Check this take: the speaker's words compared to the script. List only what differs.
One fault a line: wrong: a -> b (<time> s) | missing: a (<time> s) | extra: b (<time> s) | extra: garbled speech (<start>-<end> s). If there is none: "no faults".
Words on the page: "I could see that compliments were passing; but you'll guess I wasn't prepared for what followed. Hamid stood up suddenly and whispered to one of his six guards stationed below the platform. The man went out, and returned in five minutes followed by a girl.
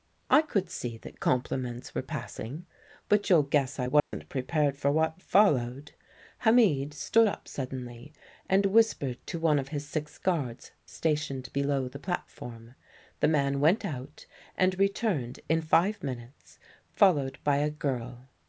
no faults